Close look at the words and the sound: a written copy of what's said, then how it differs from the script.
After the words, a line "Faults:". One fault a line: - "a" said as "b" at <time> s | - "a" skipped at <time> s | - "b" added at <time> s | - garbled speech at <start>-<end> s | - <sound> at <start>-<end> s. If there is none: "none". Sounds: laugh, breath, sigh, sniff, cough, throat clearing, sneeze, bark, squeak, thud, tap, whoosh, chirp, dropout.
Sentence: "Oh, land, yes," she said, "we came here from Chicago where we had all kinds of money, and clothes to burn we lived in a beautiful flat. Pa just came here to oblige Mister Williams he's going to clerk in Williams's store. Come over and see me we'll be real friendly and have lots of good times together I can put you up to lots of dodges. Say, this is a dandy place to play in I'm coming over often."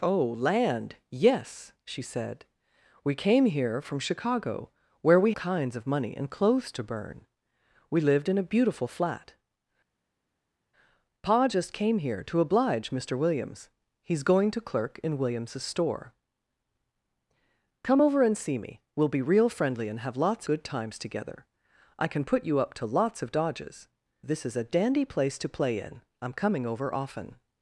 "Oh, land, yes," she said, "we came here from Chicago where we kinds of money, and clothes to burn we lived in a beautiful flat. Pa just came here to oblige Mister Williams he's going to clerk in Williams's store. Come over and see me we'll be real friendly and have lots good times together I can put you up to lots of dodges. This is a dandy place to play in I'm coming over often."
Faults:
- "had all" skipped at 5.3 s
- "of" skipped at 20.5 s
- "Say" skipped at 23.9 s